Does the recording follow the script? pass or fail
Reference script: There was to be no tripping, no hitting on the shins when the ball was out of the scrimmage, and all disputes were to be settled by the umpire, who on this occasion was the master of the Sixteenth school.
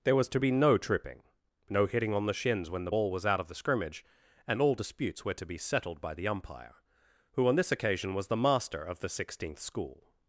pass